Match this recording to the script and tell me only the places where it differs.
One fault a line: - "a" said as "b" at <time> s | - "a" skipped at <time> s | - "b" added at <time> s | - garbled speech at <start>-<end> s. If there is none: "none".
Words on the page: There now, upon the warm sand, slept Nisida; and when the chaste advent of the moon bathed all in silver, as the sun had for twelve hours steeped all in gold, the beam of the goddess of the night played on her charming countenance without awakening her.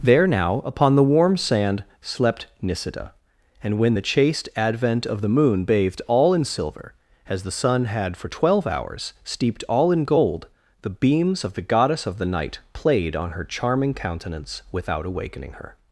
- "beam" said as "beams" at 11.0 s